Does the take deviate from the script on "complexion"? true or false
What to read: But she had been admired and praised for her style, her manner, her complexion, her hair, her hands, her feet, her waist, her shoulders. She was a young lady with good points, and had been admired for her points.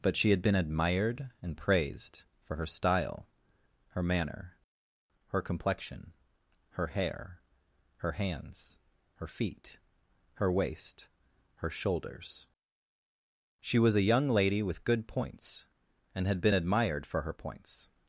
false